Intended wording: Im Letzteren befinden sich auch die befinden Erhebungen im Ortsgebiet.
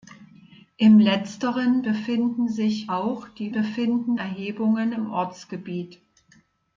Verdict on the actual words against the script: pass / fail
pass